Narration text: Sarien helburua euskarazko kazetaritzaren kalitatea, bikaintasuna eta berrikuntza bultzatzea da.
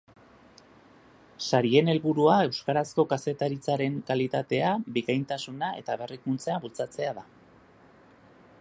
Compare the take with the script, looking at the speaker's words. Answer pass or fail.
pass